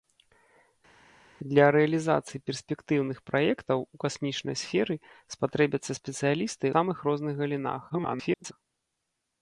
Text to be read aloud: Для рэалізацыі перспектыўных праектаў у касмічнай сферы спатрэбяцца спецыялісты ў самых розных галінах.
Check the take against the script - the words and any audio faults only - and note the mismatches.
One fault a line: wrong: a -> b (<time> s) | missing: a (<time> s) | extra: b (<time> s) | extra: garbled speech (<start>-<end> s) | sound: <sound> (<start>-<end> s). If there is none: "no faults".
missing: ў (6.7 s)
extra: garbled speech (7.9-8.5 s)